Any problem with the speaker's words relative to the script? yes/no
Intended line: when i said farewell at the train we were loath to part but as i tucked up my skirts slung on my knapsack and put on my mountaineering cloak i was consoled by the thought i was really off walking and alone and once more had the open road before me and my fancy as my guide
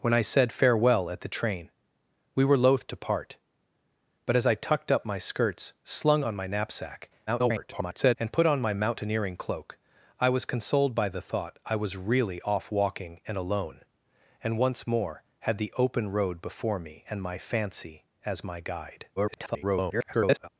yes